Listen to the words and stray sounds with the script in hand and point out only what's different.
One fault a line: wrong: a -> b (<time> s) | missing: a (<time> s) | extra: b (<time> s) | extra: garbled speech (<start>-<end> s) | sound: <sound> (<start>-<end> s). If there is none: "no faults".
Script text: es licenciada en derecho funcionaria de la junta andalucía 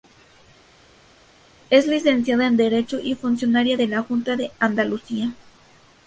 extra: y (3.0 s)
extra: de (4.4 s)